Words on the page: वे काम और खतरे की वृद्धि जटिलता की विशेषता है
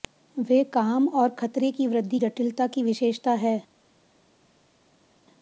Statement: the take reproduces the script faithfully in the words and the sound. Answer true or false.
true